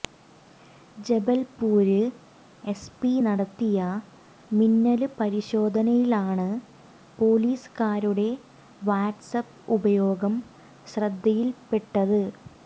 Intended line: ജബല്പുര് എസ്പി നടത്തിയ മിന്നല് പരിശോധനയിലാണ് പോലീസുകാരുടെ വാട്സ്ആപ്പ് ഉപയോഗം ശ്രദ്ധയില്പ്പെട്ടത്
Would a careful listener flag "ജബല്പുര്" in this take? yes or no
no